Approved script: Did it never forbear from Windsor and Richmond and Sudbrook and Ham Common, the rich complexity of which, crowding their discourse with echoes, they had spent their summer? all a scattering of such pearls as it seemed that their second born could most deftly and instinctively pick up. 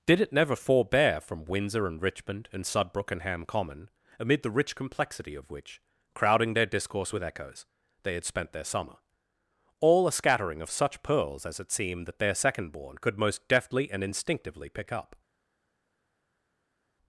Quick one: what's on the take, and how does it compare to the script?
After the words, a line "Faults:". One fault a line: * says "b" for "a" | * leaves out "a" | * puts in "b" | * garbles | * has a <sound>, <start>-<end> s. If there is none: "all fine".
Did it never forbear from Windsor and Richmond and Sudbrook and Ham Common, amid the rich complexity of which, crowding their discourse with echoes, they had spent their summer? all a scattering of such pearls as it seemed that their second born could most deftly and instinctively pick up.
Faults:
* puts in "amid"